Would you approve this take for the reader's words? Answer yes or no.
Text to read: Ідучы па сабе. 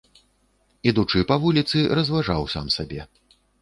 no